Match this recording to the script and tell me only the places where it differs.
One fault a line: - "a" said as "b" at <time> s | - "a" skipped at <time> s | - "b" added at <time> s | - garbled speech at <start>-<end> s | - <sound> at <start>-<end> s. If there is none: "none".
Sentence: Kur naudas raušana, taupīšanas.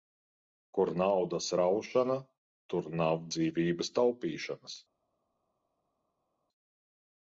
- "tur nav dzīvības" added at 2.8 s